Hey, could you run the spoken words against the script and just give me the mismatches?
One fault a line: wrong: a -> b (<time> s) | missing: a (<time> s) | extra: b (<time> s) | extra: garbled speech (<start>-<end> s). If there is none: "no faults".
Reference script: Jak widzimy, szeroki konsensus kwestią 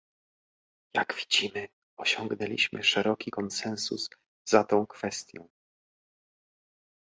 extra: osiągnęliśmy (2.0 s)
extra: za tą (4.5 s)